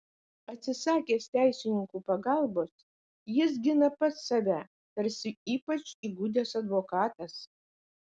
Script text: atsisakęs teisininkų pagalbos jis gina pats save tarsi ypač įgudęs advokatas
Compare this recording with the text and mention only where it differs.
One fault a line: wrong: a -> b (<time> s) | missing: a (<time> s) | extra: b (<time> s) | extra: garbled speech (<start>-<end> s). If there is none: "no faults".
no faults